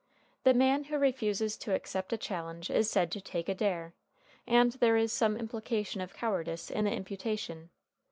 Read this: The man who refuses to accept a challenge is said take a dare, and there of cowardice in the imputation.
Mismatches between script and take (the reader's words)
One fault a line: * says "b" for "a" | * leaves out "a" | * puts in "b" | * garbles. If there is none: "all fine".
* puts in "to"
* puts in "is some implication"